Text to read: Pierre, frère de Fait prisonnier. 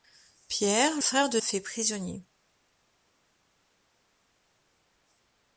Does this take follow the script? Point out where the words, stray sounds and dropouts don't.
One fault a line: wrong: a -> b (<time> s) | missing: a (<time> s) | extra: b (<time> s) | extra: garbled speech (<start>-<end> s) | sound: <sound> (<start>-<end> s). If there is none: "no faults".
no faults